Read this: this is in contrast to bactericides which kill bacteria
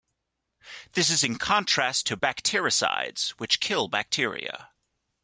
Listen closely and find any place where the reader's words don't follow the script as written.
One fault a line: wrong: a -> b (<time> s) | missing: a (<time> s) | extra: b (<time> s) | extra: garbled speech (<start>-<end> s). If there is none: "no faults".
no faults